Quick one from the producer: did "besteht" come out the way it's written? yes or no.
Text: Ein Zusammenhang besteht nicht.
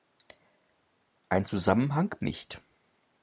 no